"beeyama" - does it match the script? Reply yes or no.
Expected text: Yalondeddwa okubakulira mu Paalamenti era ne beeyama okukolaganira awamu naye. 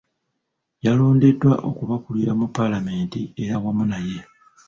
no